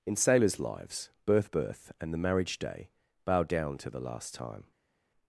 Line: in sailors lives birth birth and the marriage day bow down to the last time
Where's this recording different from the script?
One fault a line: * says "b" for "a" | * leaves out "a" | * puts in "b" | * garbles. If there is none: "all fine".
all fine